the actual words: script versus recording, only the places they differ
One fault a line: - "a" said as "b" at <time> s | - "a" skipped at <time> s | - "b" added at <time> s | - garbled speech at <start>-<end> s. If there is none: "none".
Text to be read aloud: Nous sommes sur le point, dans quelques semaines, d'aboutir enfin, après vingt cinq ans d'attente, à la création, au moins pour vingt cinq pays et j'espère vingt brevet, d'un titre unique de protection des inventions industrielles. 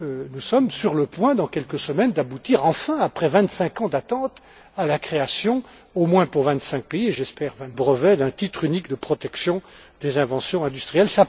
none